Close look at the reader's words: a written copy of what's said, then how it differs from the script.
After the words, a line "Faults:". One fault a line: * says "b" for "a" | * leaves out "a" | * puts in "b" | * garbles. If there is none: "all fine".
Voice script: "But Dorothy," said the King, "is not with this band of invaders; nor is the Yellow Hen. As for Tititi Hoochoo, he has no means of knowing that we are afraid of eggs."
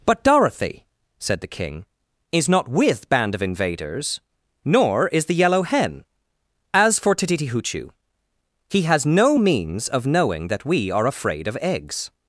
"But Dorothy," said the King, "is not with band of invaders; nor is the Yellow Hen. As for Tititi Hoochoo, he has no means of knowing that we are afraid of eggs."
Faults:
* leaves out "this"